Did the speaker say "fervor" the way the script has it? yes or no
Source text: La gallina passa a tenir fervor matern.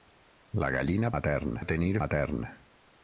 no